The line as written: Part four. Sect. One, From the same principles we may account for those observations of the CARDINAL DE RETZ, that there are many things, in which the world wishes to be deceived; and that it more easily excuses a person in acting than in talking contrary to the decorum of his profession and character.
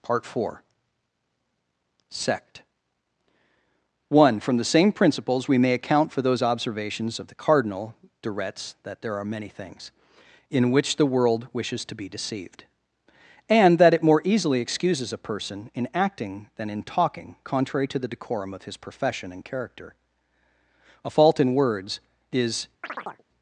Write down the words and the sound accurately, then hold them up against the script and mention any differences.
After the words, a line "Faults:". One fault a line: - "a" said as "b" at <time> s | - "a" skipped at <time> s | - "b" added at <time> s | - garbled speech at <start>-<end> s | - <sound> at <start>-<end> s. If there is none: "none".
Part four. Sect. One, From the same principles we may account for those observations of the CARDINAL DE RETZ, that there are many things, in which the world wishes to be deceived; and that it more easily excuses a person in acting than in talking contrary to the decorum of his profession and character. A fault in words is
Faults:
- "A fault in words is" added at 21.0 s
- chirp at 22.8-23.2 s